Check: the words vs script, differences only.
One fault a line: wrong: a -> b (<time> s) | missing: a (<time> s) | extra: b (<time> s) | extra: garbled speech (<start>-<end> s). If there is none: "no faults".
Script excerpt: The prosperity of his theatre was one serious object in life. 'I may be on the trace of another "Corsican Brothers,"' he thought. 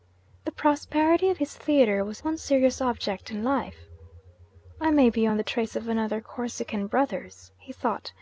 no faults